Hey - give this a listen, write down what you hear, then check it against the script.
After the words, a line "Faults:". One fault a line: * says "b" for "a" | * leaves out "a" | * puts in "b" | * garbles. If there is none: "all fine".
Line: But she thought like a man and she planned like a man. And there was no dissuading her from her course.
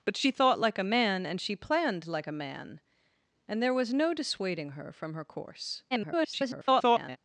But she thought like a man and she planned like a man. And there was no dissuading her from her course. [garbled]
Faults:
* garbles